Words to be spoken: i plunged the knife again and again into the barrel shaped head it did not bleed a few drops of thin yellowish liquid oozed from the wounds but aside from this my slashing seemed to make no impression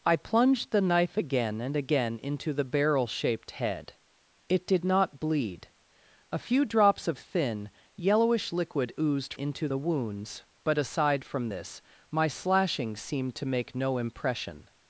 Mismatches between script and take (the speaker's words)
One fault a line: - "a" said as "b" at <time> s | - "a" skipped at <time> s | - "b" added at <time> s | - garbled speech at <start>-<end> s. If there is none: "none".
- "from" said as "into" at 9.3 s